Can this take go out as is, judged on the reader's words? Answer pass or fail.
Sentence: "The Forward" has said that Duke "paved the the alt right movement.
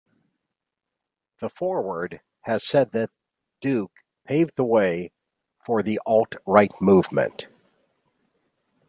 fail